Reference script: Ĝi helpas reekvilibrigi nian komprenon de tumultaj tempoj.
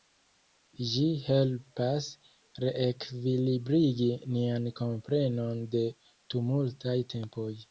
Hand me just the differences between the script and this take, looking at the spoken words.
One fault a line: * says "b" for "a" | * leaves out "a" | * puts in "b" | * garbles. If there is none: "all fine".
all fine